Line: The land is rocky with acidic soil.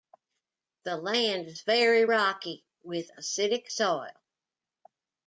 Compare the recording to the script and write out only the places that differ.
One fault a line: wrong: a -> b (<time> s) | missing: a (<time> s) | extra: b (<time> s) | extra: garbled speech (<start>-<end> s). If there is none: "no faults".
extra: very (1.6 s)